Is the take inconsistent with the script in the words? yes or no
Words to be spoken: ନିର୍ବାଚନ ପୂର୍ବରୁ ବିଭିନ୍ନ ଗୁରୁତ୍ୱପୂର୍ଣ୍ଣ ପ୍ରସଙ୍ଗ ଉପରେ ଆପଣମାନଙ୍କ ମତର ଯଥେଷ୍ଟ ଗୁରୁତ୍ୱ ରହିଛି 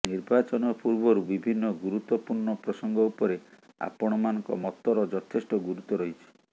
no